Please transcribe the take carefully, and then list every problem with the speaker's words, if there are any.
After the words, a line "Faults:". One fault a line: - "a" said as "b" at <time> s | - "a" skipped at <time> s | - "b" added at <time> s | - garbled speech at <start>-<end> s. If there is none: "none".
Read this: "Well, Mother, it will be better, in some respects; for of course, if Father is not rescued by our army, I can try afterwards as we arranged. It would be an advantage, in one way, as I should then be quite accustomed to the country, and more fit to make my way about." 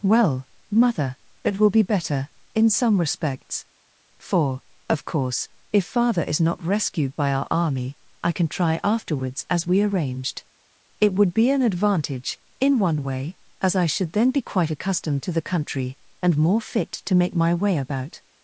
"Well, Mother, it will be better, in some respects; for of course, if Father is not rescued by our army, I can try afterwards as we arranged. It would be an advantage, in one way, as I should then be quite accustomed to the country, and more fit to make my way about."
Faults:
none